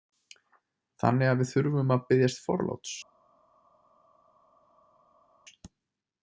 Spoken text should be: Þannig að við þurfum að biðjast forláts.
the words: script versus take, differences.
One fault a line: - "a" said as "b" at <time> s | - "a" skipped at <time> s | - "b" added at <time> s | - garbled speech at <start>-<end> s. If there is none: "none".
none